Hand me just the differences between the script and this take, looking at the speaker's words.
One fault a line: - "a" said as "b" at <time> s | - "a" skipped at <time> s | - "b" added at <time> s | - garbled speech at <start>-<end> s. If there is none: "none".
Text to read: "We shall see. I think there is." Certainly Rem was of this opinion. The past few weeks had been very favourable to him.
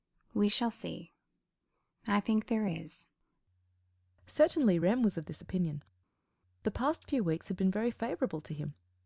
none